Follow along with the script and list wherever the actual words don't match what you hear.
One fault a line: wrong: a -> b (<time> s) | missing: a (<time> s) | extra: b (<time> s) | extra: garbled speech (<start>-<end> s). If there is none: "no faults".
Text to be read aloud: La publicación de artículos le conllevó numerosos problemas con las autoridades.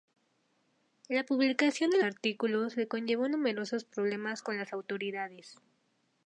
no faults